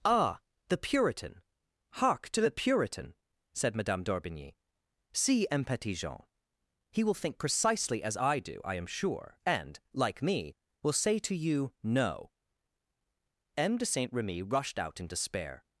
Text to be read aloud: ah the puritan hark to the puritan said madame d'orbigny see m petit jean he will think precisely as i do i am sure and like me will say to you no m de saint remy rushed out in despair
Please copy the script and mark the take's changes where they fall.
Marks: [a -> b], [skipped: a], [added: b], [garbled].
ah the puritan hark to the puritan said madame d'orbigny see m petit jean he will think precisely as i do i am sure and like me will say to you no m de saint remy rushed out in despair